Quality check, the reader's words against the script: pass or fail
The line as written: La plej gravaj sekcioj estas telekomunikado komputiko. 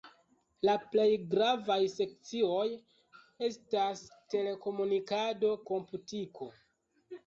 pass